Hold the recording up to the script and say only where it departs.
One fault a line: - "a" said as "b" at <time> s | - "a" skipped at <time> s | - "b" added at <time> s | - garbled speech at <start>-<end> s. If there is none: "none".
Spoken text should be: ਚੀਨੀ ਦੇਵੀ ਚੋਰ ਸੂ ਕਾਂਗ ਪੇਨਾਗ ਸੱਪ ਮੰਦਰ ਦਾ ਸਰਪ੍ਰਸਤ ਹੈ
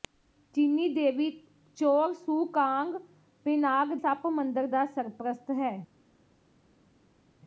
none